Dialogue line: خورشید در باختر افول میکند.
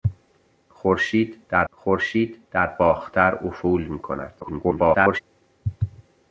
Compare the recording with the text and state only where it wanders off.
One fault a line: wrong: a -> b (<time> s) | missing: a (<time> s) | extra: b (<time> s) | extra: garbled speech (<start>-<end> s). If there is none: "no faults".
extra: خورشید در (1.7 s)
extra: garbled speech (4.4-5.2 s)